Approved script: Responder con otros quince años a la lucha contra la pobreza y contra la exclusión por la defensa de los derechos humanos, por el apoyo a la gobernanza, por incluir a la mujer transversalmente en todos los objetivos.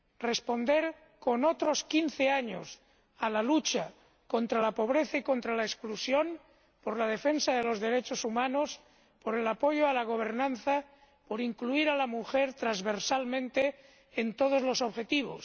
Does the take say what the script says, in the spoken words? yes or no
yes